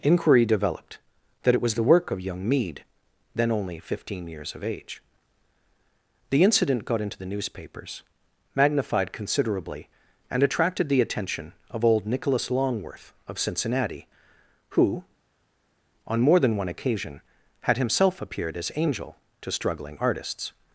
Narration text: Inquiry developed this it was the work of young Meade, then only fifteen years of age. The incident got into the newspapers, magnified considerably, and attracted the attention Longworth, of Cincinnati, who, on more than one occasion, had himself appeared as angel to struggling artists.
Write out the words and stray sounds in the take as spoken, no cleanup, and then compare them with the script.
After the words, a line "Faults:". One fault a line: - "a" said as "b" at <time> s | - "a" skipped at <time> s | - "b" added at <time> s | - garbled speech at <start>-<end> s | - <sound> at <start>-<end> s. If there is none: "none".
Inquiry developed that it was the work of young Meade, then only fifteen years of age. The incident got into the newspapers, magnified considerably, and attracted the attention of old Nicholas Longworth, of Cincinnati, who, on more than one occasion, had himself appeared as angel to struggling artists.
Faults:
- "this" said as "that" at 1.4 s
- "of old Nicholas" added at 11.7 s